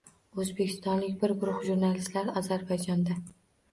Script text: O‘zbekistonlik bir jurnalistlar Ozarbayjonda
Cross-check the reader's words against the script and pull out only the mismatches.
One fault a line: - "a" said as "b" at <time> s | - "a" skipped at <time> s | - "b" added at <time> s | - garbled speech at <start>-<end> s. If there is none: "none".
- "guruh" added at 1.4 s